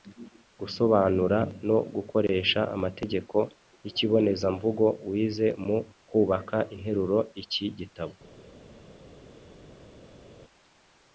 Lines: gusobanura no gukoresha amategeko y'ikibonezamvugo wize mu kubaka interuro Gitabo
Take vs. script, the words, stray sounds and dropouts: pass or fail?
fail